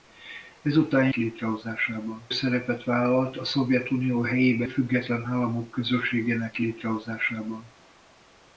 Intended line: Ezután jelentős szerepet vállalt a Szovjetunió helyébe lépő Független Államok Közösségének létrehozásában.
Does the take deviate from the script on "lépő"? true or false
true